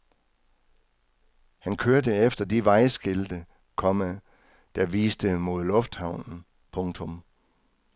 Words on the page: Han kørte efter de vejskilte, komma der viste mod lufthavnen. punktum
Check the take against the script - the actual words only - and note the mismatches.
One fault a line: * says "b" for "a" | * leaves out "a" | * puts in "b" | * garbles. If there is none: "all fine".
all fine